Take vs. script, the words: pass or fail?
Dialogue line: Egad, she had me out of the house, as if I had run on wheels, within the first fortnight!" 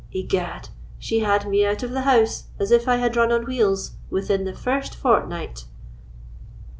pass